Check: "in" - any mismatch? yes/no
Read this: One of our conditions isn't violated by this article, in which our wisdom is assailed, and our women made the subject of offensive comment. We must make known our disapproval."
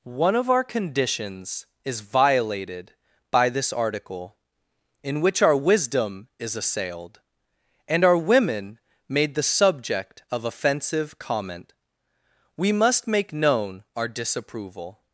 no